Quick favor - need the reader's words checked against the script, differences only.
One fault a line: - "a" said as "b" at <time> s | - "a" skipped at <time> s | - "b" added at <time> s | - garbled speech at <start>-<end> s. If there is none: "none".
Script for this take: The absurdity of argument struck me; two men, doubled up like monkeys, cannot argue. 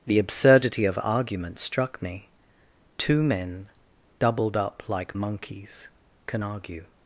- "cannot" said as "can" at 6.3 s